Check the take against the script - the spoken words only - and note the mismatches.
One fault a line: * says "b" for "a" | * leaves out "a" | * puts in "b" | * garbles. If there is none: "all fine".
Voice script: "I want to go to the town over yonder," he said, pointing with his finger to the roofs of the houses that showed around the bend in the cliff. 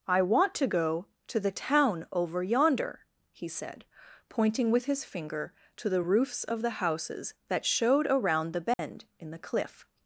all fine